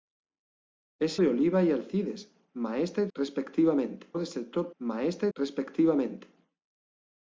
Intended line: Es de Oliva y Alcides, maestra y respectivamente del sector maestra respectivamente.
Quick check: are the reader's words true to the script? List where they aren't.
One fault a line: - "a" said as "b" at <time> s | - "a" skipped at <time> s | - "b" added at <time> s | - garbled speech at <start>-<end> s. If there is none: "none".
none